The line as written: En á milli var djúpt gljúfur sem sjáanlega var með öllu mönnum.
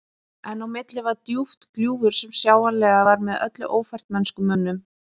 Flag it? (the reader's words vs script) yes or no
yes